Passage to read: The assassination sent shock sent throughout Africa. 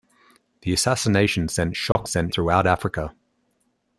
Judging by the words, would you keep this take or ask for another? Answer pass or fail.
pass